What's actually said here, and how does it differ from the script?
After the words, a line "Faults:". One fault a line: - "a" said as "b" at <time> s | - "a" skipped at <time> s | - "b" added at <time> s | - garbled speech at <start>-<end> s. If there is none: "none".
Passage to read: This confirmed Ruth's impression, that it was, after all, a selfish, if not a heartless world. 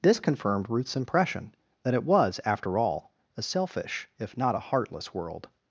This confirmed Ruth's impression, that it was, after all, a selfish, if not a heartless world.
Faults:
none